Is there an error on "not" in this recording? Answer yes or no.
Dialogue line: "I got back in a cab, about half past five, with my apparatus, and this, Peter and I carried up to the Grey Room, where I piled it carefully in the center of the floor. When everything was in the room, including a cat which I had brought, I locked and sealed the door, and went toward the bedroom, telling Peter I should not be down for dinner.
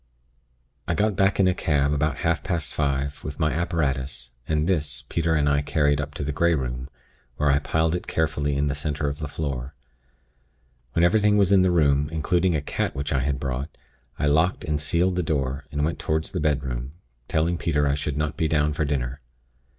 no